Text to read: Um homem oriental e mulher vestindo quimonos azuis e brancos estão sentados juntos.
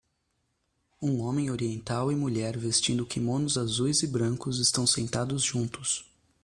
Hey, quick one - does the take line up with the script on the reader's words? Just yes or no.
yes